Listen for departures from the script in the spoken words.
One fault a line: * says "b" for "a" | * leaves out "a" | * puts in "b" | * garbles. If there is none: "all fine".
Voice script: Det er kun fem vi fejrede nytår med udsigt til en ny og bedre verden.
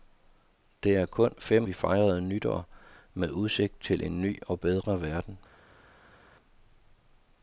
all fine